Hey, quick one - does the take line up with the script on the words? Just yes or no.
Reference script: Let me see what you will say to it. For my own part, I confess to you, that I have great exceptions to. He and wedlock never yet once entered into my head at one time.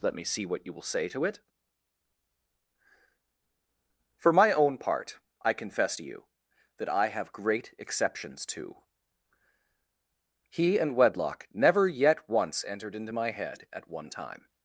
yes